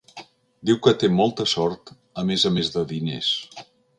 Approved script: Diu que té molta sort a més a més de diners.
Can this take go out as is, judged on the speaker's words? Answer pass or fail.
pass